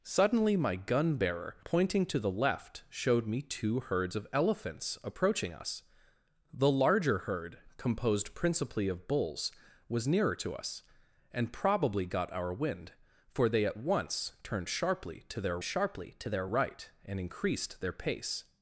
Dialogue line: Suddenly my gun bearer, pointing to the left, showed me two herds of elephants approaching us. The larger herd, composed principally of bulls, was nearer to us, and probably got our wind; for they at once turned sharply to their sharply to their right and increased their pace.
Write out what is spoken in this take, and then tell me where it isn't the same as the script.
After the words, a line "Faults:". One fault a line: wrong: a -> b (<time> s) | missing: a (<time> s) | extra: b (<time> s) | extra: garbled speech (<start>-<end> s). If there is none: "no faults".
Suddenly my gun bearer, pointing to the left, showed me two herds of elephants approaching us. The larger herd, composed principally of bulls, was nearer to us, and probably got our wind; for they at once turned sharply to their sharply to their right and increased their pace.
Faults:
no faults